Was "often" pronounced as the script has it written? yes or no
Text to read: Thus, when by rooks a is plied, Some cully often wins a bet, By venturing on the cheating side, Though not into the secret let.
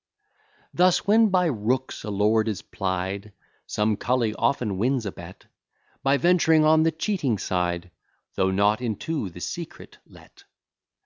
yes